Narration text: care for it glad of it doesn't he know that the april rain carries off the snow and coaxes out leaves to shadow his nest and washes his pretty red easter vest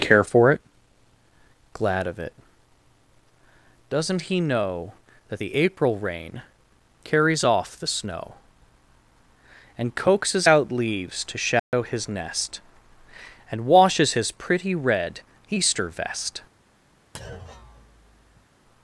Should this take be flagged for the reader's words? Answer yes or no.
no